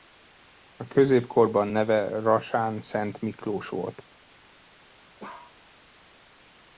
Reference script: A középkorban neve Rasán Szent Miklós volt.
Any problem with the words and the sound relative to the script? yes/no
yes